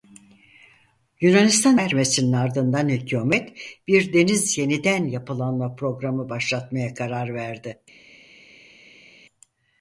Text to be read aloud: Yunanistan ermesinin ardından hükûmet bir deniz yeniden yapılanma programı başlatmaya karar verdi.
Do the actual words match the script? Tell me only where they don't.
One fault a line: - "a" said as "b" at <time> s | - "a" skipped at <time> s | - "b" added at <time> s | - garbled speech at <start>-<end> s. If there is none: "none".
none